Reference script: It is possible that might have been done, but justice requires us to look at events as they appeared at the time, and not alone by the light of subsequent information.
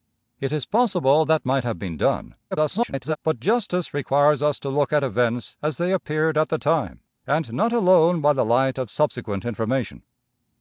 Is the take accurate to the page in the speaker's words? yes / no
no